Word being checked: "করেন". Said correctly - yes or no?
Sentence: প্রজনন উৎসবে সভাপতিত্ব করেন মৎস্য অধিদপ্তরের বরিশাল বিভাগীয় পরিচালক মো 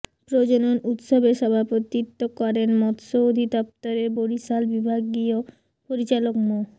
yes